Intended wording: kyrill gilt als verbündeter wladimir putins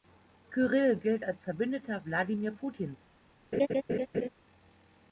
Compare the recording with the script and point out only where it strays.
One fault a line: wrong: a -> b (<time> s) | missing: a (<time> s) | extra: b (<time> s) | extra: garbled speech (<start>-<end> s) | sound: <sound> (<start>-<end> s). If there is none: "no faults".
sound: laugh (3.5-4.3 s)